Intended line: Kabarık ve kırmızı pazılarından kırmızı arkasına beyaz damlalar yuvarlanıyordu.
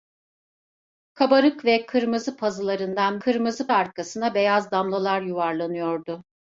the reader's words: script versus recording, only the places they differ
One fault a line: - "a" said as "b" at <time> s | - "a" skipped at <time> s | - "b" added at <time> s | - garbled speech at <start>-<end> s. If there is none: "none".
none